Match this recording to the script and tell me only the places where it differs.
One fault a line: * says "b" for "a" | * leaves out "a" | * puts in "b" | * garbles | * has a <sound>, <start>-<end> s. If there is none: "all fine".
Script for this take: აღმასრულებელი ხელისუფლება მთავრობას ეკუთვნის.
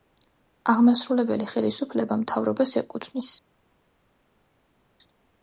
all fine